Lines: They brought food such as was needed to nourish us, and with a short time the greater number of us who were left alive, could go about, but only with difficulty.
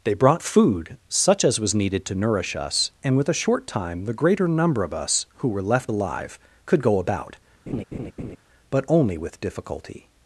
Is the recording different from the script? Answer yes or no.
no